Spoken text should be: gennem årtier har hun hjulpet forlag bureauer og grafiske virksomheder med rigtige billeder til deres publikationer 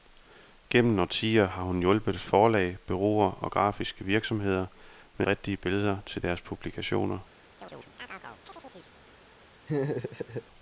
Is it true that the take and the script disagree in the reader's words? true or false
false